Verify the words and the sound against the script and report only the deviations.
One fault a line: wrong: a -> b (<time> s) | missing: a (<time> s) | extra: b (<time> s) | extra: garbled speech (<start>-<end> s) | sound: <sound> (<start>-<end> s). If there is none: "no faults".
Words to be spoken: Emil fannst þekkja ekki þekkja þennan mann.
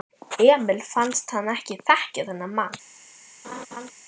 wrong: þekkja -> hann (1.4 s)
sound: laugh (3.4-3.9 s)